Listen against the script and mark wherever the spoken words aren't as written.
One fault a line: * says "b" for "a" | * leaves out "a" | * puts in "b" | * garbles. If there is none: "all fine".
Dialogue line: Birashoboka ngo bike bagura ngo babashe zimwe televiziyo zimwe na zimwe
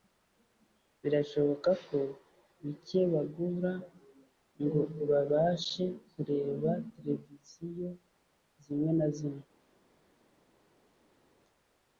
* says "ko" for "ngo"
* says "kureba" for "zimwe"